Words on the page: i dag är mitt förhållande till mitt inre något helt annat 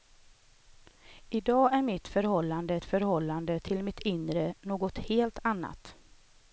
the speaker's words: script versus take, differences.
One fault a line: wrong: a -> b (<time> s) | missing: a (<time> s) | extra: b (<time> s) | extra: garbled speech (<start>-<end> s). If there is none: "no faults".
extra: förhållande (2.8 s)